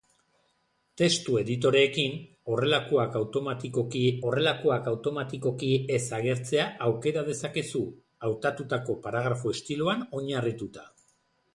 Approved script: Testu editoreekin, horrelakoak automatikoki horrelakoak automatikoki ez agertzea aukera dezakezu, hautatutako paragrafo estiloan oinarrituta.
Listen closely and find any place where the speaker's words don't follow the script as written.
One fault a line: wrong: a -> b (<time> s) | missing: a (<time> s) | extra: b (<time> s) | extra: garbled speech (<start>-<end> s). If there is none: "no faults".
no faults